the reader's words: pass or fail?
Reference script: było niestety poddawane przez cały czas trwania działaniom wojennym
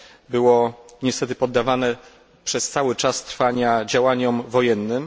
pass